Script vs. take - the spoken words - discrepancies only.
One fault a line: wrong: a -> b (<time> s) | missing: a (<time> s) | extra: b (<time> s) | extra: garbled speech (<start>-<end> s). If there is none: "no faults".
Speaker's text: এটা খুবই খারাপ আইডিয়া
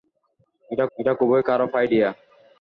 extra: এটা (1.0 s)